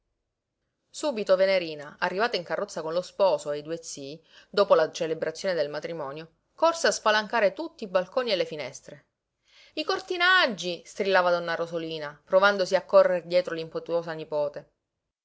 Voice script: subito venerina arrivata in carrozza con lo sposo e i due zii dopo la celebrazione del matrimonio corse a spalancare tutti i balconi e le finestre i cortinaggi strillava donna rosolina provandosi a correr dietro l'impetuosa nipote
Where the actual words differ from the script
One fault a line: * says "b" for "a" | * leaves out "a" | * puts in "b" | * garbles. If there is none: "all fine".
all fine